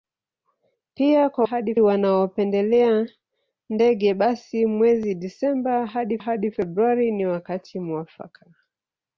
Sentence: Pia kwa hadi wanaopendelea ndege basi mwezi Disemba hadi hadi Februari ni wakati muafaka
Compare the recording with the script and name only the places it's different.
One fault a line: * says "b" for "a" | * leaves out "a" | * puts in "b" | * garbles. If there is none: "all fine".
all fine